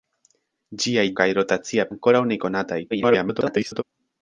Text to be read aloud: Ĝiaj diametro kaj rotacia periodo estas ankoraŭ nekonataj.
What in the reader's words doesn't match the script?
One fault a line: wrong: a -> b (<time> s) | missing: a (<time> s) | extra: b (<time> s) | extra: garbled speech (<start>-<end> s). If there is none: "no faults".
missing: diametro (1.0 s)
missing: periodo estas (1.9 s)
extra: garbled speech (2.9-3.8 s)